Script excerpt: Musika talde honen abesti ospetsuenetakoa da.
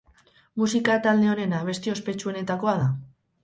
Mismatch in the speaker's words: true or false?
false